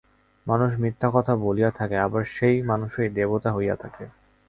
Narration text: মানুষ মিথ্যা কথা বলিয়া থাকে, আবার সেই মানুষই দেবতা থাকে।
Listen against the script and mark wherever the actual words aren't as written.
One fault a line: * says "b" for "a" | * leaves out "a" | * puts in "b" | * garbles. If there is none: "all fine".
* puts in "হইয়া"